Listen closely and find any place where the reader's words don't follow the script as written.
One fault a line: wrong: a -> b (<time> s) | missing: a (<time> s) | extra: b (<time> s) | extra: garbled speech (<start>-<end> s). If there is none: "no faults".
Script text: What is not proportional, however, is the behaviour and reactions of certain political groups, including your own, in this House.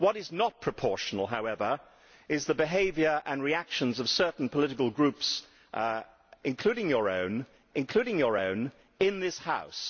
extra: including your own (7.7 s)